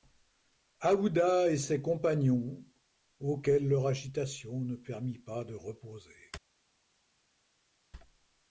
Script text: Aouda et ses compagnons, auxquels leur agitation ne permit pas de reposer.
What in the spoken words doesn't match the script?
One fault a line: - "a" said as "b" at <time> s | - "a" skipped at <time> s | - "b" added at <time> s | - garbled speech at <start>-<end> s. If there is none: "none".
none